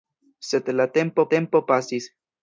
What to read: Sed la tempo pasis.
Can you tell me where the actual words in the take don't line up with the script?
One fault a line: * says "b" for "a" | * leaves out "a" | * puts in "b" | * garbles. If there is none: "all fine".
* puts in "tempo"